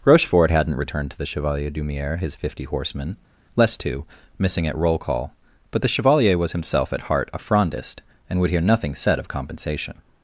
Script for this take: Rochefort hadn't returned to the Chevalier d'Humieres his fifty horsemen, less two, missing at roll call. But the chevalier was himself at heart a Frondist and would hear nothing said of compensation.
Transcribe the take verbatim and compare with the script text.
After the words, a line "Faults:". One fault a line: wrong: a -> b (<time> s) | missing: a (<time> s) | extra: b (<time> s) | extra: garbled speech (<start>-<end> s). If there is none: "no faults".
Rochefort hadn't returned to the Chevalier d'Humieres his fifty horsemen, less two, missing at roll call. But the chevalier was himself at heart a Frondist and would hear nothing said of compensation.
Faults:
no faults